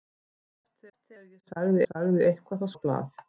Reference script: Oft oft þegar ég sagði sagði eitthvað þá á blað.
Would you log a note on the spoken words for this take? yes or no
no